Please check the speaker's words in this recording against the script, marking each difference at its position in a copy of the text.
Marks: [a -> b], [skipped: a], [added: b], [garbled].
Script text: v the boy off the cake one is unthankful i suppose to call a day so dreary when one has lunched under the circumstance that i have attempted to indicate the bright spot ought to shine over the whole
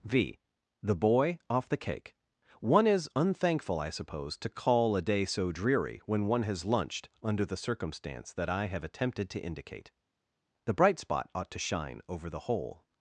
v the boy off the cake one is unthankful i suppose to call a day so dreary when one has lunched under the circumstance that i have attempted to indicate the bright spot ought to shine over the whole